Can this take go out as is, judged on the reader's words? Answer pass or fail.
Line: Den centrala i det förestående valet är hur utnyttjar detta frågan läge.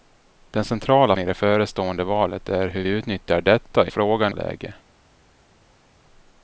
pass